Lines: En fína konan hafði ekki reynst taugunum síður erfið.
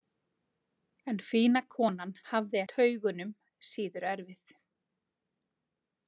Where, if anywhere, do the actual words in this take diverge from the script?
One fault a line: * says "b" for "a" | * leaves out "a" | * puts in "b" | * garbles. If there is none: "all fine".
* leaves out "ekki reynst"